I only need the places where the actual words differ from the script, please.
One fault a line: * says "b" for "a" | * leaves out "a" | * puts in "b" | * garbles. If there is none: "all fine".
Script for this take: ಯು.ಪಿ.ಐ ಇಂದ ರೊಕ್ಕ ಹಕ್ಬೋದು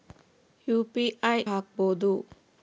* leaves out "ಇಂದ ರೊಕ್ಕ"